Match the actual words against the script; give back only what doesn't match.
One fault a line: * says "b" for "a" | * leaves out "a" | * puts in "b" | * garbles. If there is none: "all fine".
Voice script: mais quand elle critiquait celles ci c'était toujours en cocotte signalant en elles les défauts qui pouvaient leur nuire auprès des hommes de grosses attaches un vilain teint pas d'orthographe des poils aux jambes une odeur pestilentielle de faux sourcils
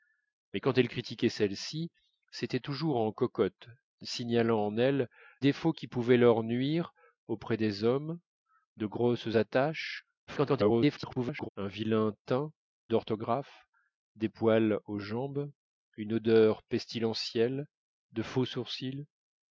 * leaves out "les"
* garbles
* leaves out "pas"